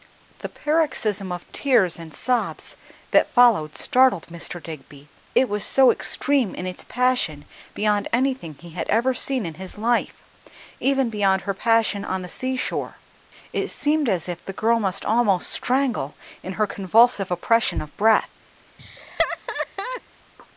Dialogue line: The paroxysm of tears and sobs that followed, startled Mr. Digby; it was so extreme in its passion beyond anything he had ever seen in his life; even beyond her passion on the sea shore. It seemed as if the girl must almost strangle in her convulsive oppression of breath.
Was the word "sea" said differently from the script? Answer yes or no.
no